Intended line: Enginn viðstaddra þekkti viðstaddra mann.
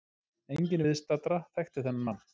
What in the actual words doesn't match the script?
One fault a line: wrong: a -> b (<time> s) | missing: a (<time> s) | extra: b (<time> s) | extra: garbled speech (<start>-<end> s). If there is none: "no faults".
wrong: viðstaddra -> þennan (1.9 s)